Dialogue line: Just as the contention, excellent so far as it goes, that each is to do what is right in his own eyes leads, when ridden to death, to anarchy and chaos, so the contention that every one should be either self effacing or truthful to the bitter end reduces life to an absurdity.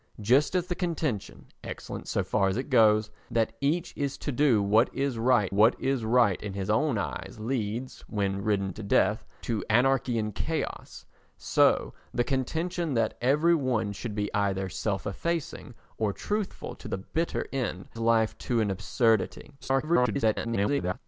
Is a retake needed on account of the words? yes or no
yes